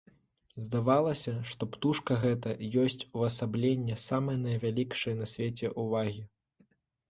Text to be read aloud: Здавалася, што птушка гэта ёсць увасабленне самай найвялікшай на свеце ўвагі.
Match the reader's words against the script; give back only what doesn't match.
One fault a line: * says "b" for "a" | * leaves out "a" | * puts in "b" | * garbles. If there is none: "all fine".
all fine